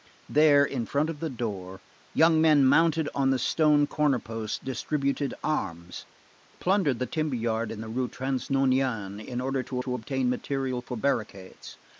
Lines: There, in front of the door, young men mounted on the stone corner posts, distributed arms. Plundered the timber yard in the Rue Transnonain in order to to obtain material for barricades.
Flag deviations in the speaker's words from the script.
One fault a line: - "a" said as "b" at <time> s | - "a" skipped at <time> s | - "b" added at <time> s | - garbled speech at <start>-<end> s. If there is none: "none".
none